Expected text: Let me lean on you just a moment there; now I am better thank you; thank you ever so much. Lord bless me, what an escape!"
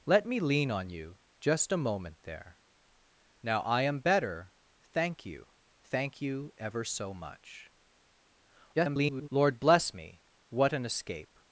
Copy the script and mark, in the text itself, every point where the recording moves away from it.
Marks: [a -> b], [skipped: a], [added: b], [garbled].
Let me lean on you just a moment there; now I am better thank you; thank you ever so much. [garbled] Lord bless me, what an escape!"